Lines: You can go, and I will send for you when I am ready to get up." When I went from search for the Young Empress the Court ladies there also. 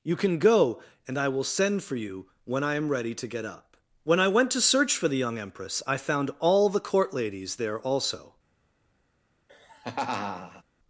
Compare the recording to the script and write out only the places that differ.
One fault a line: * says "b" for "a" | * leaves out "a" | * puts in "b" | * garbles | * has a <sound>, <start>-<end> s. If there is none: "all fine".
* says "to" for "from"
* puts in "I found all"
* has a laugh, 9.5-10.6 s